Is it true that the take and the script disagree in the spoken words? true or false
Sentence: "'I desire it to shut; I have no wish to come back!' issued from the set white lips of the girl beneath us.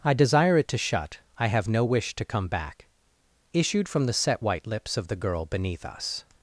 false